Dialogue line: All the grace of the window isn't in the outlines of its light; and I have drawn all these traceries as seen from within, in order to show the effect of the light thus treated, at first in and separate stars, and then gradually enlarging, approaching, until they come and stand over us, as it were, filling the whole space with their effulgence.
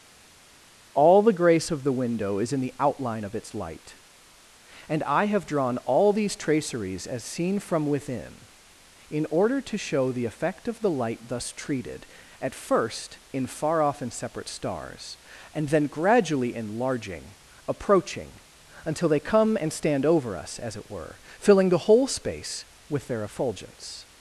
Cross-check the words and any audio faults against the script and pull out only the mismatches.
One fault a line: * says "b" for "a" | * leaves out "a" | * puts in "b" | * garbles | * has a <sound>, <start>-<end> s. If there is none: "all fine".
* says "is" for "isn't"
* says "outline" for "outlines"
* puts in "far off"